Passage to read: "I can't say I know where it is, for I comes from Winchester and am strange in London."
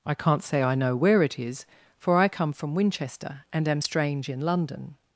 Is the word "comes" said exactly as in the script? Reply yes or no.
no